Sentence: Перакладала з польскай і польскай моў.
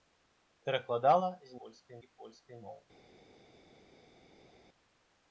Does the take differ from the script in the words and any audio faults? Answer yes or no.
no